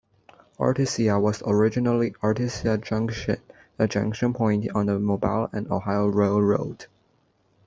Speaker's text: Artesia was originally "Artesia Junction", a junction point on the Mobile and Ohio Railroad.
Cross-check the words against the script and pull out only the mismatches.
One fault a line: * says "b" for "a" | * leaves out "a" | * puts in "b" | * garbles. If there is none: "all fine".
all fine